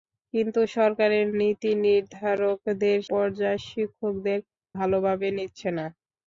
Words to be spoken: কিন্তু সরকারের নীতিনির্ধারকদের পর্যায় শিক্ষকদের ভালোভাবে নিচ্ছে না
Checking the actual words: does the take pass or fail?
pass